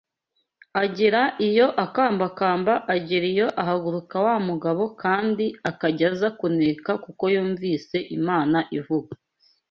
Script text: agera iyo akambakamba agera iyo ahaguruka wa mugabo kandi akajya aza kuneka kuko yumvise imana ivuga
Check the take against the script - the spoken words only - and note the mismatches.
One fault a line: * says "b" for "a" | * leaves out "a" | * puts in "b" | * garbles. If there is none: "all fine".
all fine